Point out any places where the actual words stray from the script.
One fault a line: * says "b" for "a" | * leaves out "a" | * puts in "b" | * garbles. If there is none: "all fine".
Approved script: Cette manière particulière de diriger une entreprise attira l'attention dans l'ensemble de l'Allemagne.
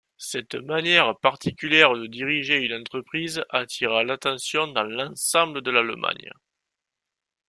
all fine